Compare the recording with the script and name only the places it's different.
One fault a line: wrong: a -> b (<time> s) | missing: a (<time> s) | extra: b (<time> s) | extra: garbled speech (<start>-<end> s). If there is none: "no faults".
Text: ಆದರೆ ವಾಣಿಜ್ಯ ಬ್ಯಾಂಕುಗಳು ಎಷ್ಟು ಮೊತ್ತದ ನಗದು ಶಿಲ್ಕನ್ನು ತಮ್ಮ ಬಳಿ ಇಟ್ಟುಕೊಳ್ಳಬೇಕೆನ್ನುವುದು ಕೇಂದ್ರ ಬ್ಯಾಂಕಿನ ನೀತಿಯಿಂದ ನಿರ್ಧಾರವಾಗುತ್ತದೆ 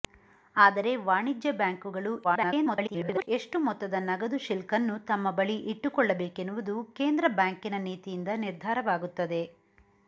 extra: garbled speech (2.2-3.3 s)